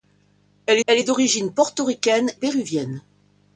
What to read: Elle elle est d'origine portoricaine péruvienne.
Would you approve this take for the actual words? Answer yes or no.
yes